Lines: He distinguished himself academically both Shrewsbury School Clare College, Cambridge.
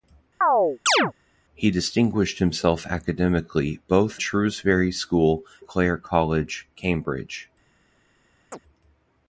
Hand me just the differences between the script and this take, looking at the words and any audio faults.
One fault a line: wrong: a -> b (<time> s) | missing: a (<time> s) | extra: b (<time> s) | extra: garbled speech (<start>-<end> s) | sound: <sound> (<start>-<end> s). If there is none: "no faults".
sound: chirp (0.4-1.1 s)
sound: chirp (8.5-8.6 s)